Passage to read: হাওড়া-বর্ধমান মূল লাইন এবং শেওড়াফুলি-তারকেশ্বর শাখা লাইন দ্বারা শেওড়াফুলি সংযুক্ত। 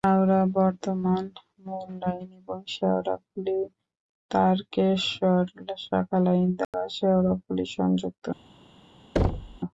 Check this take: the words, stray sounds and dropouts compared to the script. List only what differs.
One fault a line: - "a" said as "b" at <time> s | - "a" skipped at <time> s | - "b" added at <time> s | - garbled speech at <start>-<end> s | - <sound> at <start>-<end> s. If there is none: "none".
- dropout at 6.6-6.7 s
- thud at 9.2-9.6 s